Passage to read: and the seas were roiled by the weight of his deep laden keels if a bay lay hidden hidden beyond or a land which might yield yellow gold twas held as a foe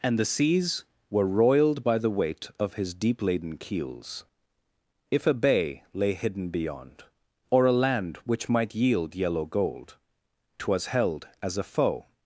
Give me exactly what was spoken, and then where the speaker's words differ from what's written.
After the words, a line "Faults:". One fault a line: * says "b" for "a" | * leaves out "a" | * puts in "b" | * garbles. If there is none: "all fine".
and the seas were roiled by the weight of his deep laden keels if a bay lay hidden beyond or a land which might yield yellow gold twas held as a foe
Faults:
* leaves out "hidden"